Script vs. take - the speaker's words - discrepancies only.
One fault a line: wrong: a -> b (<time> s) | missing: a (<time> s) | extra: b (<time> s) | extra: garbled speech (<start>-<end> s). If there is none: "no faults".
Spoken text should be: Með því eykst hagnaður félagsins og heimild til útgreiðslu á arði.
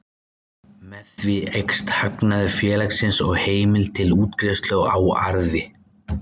no faults